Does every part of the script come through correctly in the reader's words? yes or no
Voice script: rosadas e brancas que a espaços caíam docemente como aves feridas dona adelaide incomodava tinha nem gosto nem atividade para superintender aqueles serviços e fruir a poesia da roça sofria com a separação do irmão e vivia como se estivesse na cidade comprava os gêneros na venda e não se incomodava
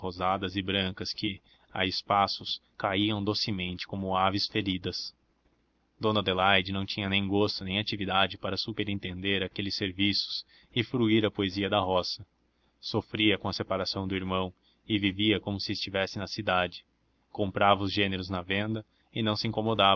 no